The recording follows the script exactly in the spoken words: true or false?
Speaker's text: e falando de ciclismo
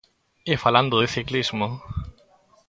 true